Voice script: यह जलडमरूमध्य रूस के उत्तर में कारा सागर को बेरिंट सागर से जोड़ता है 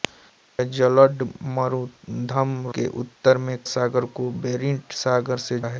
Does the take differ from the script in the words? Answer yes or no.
yes